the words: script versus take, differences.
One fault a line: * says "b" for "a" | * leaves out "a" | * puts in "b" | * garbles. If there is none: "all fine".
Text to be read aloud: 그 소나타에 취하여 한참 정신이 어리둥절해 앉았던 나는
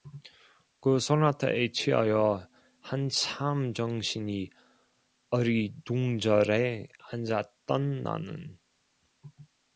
all fine